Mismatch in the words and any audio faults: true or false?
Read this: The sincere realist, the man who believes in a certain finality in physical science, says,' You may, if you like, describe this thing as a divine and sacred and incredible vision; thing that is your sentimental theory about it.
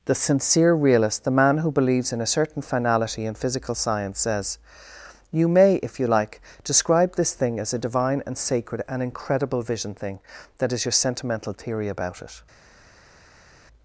false